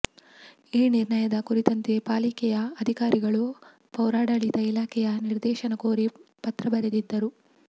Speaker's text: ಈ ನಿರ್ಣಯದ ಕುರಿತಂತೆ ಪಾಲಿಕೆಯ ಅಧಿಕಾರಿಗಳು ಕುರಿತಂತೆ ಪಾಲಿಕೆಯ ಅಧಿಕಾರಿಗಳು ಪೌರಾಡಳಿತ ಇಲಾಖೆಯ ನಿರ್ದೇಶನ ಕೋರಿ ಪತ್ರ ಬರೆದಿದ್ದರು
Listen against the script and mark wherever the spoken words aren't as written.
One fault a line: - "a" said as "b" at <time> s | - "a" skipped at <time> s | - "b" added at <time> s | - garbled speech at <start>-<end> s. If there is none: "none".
- "ಕುರಿತಂತೆ ಪಾಲಿಕೆಯ ಅಧಿಕಾರಿಗಳು" skipped at 3.4 s